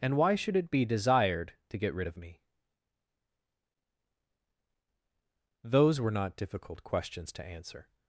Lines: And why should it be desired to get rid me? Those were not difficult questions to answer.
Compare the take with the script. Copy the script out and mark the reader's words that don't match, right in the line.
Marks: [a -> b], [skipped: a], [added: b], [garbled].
And why should it be desired to get rid [added: of] me? Those were not difficult questions to answer.